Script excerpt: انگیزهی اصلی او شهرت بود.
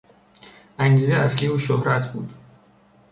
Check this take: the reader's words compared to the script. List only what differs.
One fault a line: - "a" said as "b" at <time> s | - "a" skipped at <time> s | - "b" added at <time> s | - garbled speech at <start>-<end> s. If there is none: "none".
none